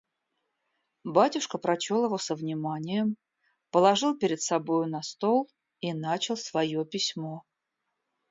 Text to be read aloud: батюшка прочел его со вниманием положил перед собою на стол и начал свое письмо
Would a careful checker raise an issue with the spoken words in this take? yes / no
no